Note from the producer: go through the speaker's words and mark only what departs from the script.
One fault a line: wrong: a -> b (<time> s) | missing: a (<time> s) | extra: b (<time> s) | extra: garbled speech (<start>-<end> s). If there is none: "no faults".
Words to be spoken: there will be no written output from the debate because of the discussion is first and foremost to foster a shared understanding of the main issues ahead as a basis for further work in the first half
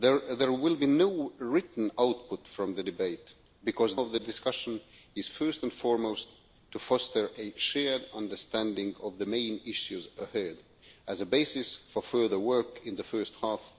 no faults